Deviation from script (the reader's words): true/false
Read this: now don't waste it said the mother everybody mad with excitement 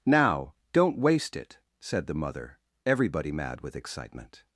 false